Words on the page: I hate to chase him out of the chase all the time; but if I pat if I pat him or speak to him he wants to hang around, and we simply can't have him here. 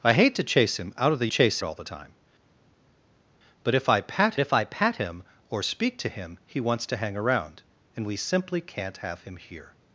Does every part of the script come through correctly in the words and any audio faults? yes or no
yes